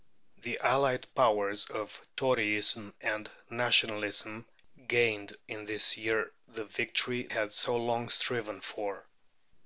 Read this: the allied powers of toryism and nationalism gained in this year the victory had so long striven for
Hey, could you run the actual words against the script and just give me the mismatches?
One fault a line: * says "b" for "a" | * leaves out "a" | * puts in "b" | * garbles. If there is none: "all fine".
all fine